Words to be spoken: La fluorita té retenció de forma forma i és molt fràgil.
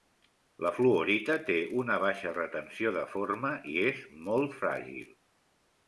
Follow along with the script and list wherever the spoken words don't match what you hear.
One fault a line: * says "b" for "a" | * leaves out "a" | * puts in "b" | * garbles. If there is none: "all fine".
* puts in "una baixa"
* leaves out "forma"